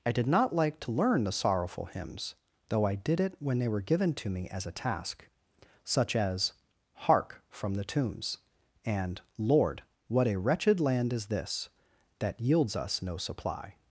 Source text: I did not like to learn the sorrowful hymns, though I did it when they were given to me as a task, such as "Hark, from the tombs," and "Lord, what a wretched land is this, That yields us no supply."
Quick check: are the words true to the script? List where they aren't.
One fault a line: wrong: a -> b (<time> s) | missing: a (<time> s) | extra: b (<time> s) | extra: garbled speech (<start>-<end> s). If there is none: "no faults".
no faults